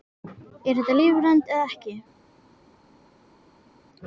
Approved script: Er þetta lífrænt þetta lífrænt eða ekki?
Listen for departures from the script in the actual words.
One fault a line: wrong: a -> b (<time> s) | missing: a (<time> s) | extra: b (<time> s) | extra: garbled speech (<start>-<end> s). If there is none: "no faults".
missing: þetta lífrænt (1.5 s)